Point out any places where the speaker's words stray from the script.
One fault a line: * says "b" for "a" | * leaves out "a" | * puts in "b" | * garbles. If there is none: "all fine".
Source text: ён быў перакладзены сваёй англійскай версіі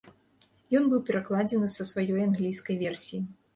* puts in "са"